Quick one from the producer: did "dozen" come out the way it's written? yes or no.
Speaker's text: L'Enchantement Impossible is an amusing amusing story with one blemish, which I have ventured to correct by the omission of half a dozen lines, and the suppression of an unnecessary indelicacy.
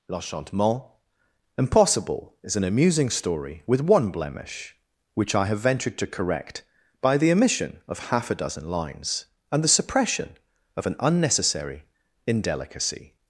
yes